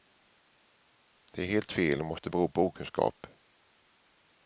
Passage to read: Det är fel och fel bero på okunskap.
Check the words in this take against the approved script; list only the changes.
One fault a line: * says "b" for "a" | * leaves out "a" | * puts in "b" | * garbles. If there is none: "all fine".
* puts in "helt"
* says "måste" for "fel"